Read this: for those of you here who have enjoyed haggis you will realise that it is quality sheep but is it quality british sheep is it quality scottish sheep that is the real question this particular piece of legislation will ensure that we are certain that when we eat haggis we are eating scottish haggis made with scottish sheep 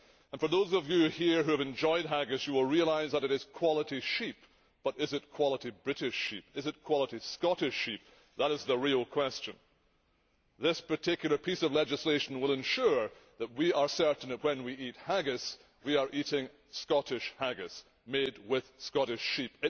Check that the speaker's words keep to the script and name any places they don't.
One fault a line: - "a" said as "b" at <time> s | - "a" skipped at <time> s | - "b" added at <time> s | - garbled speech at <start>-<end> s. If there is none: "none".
none